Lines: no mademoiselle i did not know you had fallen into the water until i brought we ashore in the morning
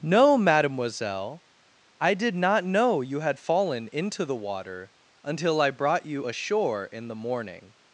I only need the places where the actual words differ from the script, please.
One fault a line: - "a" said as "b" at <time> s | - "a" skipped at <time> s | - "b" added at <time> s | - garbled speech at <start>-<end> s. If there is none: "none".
- "we" said as "you" at 6.1 s